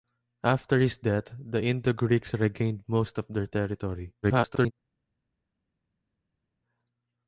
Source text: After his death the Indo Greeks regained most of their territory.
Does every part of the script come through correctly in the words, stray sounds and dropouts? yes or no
no